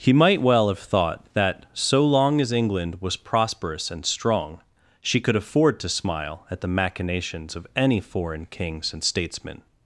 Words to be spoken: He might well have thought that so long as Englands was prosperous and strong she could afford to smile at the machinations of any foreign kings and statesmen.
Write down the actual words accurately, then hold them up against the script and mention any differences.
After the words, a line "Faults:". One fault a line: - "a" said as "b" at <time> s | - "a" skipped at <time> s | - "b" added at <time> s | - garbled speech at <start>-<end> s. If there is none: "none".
He might well have thought that so long as England was prosperous and strong she could afford to smile at the machinations of any foreign kings and statesmen.
Faults:
- "Englands" said as "England" at 2.5 s